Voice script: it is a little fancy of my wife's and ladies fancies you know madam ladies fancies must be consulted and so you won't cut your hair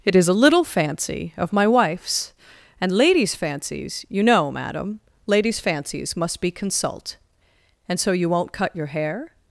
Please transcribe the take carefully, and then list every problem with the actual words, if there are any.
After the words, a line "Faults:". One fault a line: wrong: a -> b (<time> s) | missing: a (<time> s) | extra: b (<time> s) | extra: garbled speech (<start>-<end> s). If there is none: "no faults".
it is a little fancy of my wife's and ladies fancies you know madam ladies fancies must be consult and so you won't cut your hair
Faults:
wrong: consulted -> consult (6.5 s)